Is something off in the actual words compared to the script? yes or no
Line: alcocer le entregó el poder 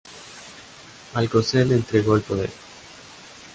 no